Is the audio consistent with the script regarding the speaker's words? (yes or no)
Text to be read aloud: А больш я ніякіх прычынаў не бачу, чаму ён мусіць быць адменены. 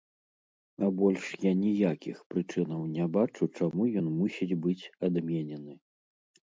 yes